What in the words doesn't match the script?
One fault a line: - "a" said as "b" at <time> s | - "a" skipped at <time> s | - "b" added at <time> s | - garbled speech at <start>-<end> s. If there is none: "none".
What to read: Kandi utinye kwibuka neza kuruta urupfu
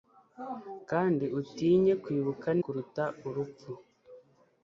- "neza" skipped at 2.5 s